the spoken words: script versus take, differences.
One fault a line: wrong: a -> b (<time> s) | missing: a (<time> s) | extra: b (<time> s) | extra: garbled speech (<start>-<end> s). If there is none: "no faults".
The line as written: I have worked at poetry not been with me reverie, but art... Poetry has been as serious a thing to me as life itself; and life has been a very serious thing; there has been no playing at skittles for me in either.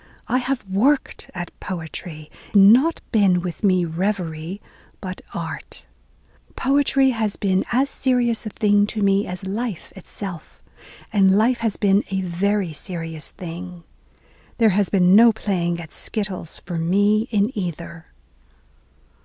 no faults